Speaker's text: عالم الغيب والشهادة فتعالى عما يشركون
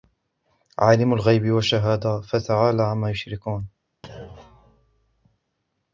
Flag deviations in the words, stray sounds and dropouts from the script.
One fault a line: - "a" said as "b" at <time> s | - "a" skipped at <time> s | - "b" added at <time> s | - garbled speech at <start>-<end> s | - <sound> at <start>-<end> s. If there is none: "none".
- thud at 4.0-5.4 s